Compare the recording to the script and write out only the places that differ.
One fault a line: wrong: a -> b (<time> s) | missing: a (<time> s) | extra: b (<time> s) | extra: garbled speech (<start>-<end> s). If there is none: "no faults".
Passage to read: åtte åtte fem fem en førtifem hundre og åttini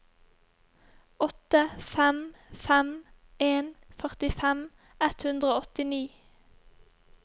missing: åtte (1.6 s)
extra: ett (5.1 s)